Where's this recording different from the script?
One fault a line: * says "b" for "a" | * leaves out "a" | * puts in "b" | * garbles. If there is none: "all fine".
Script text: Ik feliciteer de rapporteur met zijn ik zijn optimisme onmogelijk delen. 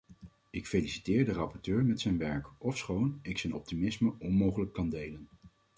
* puts in "werk ofschoon"
* puts in "kan"